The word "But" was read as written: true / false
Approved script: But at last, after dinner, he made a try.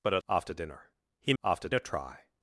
true